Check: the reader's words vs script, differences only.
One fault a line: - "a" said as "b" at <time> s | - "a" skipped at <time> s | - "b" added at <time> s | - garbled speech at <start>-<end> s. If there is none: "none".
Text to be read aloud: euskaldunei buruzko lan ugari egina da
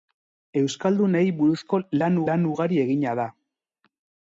- "lan" added at 2.3 s